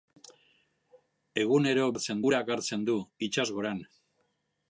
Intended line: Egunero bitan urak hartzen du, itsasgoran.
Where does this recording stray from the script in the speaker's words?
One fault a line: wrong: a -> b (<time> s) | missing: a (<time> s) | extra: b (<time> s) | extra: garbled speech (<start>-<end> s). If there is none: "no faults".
wrong: bitan -> hartzen (1.9 s)